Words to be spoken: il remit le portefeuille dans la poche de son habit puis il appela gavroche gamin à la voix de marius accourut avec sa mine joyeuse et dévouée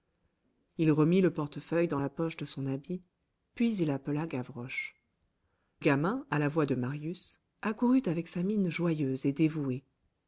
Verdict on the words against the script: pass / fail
pass